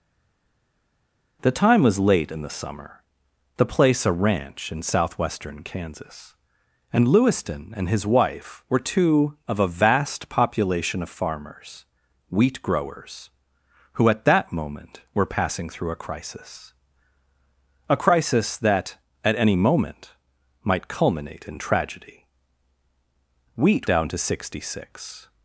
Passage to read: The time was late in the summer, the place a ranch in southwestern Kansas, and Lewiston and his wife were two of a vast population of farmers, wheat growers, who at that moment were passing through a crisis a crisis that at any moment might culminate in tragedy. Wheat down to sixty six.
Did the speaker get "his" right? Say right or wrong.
right